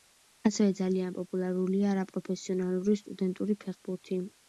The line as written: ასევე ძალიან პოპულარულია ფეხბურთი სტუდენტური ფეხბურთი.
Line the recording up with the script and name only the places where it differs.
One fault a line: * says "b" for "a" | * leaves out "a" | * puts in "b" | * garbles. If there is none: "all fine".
* says "არაპროფესიონალური" for "ფეხბურთი"